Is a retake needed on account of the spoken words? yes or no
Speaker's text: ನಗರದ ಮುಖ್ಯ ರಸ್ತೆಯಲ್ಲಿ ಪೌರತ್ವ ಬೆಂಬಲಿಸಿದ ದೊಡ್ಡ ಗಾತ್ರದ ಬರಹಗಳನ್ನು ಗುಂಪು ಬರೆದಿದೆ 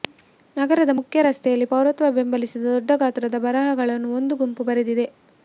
yes